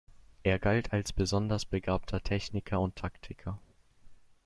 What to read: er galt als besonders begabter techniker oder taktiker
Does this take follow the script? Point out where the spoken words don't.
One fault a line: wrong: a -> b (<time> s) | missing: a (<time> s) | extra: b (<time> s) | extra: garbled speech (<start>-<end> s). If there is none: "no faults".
wrong: oder -> und (2.8 s)